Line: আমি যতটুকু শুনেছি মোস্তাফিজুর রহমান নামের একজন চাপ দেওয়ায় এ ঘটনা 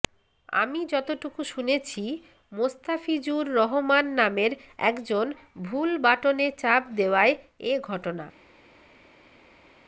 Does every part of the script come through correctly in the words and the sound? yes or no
no